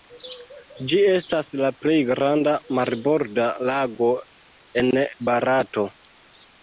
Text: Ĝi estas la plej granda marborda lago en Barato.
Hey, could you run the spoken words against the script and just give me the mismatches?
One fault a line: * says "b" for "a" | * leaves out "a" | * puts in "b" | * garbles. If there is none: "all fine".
all fine